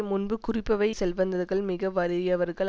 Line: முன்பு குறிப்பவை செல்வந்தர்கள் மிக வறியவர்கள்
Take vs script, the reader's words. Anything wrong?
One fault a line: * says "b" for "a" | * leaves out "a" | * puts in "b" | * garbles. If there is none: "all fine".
all fine